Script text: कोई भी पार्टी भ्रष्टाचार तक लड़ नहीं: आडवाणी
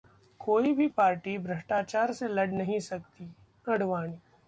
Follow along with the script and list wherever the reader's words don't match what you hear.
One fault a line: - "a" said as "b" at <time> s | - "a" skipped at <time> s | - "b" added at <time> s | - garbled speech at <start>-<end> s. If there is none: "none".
- "तक" said as "से" at 2.1 s
- "सकती" added at 2.8 s